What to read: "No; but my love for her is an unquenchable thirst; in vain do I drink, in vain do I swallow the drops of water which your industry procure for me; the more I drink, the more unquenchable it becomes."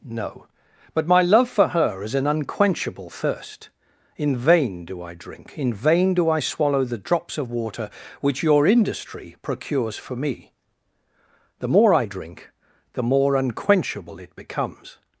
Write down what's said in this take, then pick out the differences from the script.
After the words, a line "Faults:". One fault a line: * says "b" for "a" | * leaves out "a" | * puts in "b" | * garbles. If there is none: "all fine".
"No; but my love for her is an unquenchable thirst; in vain do I drink, in vain do I swallow the drops of water which your industry procures for me; the more I drink, the more unquenchable it becomes."
Faults:
* says "procures" for "procure"